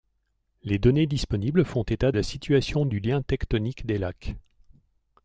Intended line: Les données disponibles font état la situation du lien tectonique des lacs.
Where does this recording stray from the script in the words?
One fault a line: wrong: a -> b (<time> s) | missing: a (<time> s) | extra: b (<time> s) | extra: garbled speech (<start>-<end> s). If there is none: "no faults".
no faults